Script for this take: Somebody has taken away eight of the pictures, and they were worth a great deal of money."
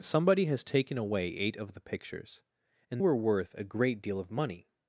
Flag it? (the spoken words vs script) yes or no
yes